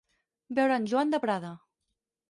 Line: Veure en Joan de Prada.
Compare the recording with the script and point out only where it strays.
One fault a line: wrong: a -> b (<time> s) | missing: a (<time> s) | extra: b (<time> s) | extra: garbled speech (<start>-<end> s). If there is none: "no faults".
no faults